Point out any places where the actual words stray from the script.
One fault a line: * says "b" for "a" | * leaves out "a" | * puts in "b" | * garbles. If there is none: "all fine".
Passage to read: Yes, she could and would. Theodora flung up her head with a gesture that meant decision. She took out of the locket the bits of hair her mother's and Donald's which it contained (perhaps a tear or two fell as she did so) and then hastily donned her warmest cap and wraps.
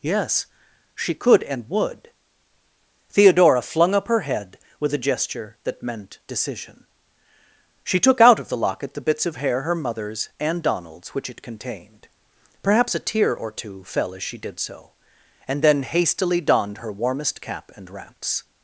all fine